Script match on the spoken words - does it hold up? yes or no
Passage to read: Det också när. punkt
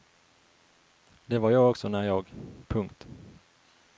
no